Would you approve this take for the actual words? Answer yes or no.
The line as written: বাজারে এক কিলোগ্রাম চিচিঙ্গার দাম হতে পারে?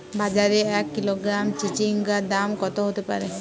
no